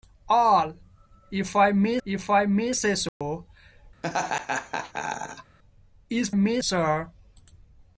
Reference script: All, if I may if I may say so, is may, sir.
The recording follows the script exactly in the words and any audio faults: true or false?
false